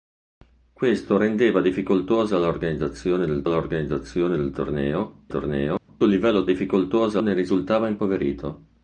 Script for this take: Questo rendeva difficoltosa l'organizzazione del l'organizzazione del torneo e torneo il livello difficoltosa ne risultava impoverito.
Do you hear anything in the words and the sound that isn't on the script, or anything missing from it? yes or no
yes